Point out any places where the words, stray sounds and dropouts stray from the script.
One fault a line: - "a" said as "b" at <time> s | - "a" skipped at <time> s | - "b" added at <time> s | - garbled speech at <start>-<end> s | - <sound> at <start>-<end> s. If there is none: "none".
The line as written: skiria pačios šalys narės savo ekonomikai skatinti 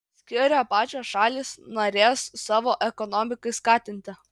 none